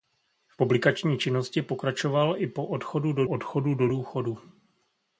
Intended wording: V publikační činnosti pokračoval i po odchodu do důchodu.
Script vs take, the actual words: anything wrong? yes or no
yes